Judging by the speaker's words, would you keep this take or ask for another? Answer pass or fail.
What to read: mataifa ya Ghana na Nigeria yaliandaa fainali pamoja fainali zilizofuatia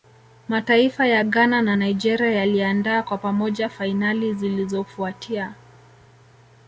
fail